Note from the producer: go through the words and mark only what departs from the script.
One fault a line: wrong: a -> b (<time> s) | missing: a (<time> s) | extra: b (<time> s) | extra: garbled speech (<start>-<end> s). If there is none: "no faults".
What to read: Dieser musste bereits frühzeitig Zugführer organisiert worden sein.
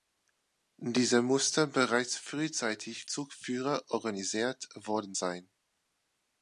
no faults